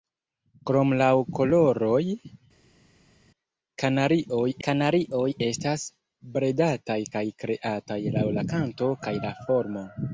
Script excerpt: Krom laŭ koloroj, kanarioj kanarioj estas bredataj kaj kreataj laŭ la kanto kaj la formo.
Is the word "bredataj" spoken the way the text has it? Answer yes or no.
yes